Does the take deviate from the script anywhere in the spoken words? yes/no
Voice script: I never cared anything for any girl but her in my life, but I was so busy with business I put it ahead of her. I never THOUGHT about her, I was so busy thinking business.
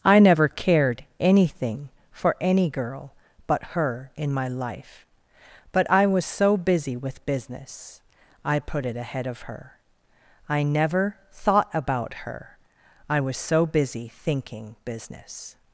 no